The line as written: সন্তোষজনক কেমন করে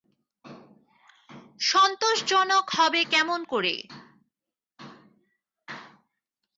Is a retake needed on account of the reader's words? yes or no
yes